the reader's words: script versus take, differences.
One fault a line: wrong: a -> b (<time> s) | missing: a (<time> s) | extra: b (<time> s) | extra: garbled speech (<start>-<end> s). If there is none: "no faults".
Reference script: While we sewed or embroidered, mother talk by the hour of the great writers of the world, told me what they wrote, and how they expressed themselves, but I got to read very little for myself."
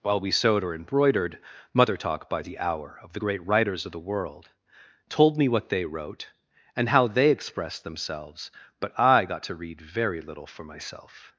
no faults